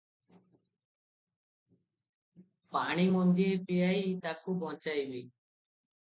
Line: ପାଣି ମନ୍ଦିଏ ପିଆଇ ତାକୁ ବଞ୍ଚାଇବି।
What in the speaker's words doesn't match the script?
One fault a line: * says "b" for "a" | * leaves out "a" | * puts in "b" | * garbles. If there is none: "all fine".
all fine